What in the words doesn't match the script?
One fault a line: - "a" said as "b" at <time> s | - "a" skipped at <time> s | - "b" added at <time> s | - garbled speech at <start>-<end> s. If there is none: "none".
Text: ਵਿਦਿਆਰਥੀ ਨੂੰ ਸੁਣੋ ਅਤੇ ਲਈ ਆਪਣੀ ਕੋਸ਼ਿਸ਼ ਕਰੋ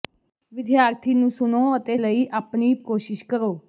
none